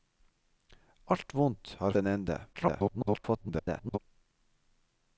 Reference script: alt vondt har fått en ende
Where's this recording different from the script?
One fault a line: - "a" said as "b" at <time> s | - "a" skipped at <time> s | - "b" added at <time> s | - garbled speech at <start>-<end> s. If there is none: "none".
- "fått" skipped at 1.9 s
- garbled speech at 2.5-4.0 s